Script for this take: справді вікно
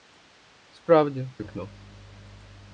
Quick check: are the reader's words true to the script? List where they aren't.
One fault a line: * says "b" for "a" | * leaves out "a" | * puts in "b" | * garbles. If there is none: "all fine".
all fine